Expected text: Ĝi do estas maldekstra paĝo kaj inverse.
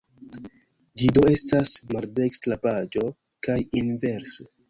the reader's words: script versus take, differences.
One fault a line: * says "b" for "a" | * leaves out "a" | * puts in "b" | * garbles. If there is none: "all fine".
all fine